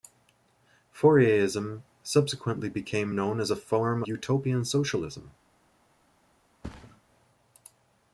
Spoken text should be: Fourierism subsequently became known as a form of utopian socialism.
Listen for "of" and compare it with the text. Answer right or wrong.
wrong